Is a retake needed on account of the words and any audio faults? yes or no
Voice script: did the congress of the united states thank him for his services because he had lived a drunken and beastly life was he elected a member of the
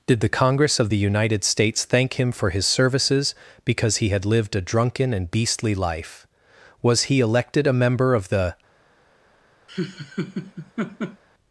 yes